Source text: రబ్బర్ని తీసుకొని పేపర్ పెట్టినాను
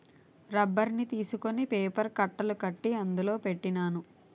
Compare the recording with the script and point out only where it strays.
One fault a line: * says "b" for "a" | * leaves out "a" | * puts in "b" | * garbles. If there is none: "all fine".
* puts in "కట్టలు కట్టి అందులో"